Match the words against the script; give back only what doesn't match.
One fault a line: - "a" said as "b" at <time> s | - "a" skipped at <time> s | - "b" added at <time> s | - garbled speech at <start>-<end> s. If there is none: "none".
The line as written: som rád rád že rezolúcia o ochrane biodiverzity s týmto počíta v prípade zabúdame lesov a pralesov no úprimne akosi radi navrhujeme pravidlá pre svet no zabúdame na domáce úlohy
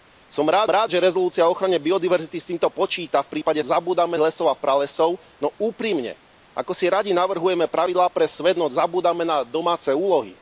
none